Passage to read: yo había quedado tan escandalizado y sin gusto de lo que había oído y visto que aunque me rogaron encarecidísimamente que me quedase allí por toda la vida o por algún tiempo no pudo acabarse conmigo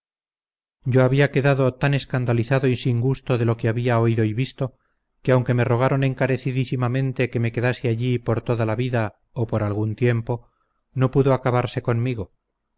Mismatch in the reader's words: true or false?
false